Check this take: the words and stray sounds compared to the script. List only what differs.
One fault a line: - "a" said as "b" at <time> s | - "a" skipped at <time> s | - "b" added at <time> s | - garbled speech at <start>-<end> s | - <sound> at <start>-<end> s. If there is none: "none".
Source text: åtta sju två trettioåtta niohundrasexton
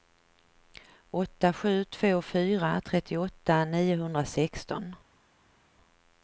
- "fyra" added at 2.2 s